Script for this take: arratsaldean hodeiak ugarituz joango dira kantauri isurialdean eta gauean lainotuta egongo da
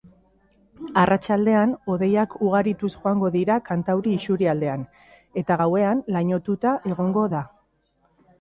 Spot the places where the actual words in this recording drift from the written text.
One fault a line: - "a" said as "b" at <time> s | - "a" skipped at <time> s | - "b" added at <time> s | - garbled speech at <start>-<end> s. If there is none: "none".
none